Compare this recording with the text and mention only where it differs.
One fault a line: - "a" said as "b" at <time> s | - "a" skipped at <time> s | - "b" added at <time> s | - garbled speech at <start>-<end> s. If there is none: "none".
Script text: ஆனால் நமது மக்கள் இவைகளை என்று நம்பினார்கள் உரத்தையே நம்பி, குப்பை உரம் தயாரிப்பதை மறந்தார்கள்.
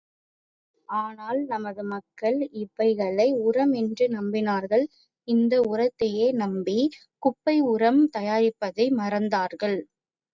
- "உரம்" added at 3.4 s
- "இந்த" added at 5.3 s